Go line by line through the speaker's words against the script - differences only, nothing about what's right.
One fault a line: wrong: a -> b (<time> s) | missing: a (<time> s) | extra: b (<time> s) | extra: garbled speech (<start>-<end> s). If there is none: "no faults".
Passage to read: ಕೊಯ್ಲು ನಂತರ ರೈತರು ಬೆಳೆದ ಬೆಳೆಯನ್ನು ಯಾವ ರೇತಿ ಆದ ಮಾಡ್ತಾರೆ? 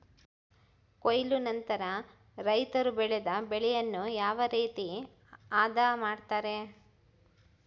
no faults